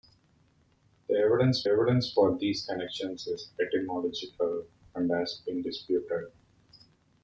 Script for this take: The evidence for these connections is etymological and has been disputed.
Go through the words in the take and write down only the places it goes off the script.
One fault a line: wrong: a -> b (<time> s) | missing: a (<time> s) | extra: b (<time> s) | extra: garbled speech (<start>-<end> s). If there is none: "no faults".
extra: evidence (1.6 s)